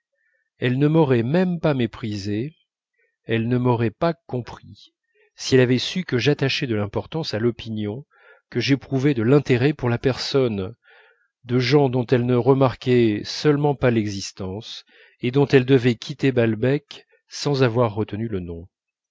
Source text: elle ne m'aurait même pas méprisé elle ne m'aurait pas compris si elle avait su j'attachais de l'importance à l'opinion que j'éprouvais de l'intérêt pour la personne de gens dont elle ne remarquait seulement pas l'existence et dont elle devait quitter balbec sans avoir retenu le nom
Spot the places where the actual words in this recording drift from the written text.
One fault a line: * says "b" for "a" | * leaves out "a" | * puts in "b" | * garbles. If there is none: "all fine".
* puts in "que"